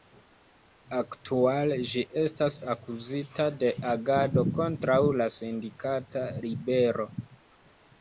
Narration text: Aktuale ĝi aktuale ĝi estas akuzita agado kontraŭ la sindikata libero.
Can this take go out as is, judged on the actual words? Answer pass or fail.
fail